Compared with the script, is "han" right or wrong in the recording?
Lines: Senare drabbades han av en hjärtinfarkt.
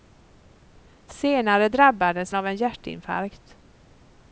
wrong